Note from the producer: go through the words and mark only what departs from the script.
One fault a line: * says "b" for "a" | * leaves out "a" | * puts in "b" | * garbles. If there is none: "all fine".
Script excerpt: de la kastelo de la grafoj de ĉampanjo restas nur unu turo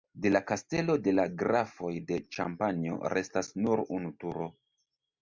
all fine